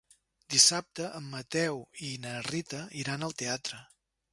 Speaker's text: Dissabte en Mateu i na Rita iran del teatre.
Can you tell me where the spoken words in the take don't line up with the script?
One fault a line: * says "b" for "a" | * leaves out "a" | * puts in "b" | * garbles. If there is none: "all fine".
* says "al" for "del"